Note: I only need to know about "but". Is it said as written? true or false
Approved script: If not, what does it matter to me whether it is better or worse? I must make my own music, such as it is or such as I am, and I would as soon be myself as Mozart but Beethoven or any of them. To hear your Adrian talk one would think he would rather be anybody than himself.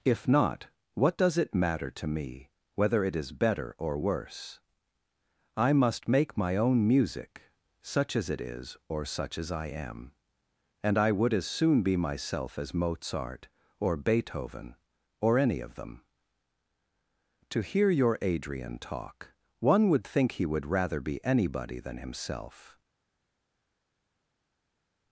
false